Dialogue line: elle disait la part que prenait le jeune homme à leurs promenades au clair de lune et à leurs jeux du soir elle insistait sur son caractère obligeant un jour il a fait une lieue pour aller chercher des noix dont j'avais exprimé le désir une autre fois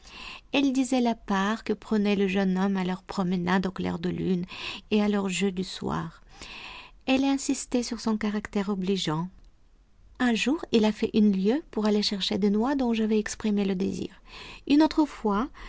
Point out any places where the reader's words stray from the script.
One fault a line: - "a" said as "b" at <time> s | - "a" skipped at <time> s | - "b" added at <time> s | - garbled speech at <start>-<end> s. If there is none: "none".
none